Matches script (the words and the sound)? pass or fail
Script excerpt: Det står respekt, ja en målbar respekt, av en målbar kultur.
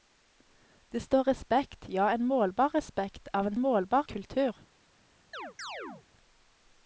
fail